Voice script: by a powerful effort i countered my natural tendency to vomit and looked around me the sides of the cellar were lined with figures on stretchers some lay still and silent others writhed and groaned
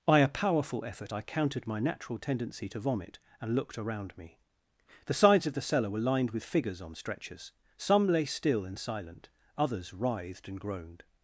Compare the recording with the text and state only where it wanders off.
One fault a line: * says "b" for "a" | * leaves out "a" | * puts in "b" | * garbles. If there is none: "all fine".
all fine